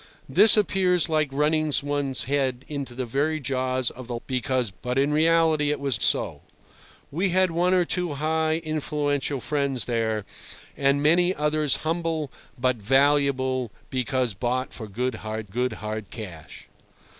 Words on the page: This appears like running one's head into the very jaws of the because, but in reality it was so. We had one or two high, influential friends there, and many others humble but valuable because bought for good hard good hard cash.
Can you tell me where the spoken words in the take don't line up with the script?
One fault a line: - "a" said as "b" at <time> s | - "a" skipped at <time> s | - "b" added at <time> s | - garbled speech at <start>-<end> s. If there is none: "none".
none